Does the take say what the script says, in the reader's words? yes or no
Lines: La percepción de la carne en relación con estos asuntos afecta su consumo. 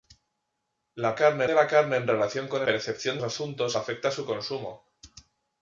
no